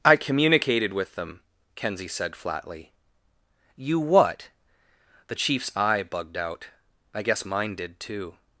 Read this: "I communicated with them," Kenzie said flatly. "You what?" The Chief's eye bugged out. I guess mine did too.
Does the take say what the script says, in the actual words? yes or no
yes